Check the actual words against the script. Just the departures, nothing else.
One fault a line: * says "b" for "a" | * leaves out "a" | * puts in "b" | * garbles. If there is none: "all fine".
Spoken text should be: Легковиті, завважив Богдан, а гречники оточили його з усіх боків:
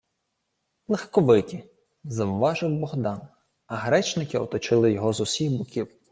all fine